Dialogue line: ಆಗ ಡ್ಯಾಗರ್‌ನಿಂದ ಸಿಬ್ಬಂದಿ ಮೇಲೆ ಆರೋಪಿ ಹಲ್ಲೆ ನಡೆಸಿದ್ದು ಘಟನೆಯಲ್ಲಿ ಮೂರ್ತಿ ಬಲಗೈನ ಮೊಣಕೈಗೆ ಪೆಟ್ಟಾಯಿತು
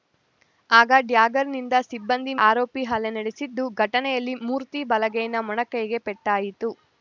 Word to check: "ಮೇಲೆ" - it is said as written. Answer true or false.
false